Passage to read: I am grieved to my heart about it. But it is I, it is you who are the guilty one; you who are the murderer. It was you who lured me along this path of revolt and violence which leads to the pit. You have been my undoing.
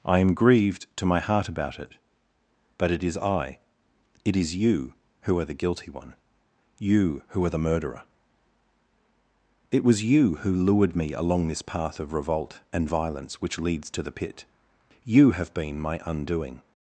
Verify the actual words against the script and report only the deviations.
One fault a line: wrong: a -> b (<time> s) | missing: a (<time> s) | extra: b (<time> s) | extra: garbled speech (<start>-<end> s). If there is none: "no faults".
no faults